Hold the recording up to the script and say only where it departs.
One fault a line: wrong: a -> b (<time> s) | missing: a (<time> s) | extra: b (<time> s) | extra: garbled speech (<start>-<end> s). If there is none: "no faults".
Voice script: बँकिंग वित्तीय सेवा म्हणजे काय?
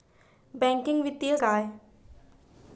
missing: सेवा म्हणजे (1.4 s)